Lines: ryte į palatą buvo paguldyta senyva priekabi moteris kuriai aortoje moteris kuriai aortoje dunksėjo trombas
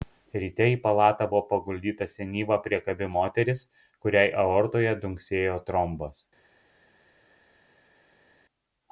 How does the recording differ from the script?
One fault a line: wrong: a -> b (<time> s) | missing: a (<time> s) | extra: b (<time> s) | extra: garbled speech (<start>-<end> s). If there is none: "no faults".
missing: moteris kuriai aortoje (5.0 s)